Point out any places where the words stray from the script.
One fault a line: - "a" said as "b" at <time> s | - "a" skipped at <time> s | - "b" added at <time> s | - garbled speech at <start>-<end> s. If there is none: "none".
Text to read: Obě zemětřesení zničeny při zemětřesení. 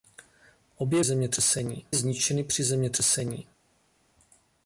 none